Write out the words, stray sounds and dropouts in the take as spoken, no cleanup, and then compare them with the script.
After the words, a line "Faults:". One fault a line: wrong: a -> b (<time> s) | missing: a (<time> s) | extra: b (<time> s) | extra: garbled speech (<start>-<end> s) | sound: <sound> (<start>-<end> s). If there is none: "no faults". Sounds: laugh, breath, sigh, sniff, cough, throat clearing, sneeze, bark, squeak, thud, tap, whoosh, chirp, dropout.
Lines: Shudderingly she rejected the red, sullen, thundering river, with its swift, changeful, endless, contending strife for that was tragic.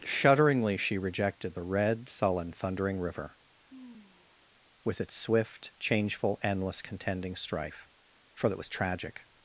Shudderingly she rejected the red, sullen, thundering river, with its swift, changeful, endless, contending strife for that was tragic.
Faults:
sound: sigh (3.7-4.5 s)